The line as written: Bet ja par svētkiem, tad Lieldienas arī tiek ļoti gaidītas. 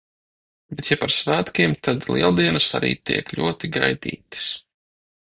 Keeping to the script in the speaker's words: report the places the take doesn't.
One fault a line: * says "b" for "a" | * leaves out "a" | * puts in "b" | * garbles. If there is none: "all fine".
all fine